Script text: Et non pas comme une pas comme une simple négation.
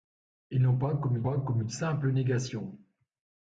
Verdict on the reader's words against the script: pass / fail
pass